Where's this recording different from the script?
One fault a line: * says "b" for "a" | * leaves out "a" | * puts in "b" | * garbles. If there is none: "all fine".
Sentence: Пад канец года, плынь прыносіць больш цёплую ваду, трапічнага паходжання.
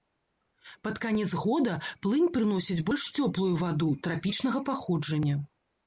all fine